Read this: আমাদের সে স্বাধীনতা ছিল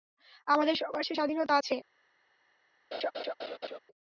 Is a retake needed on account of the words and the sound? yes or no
yes